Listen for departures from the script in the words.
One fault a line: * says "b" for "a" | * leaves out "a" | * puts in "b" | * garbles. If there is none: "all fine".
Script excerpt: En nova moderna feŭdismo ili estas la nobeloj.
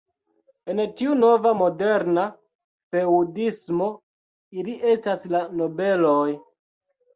* puts in "tiu"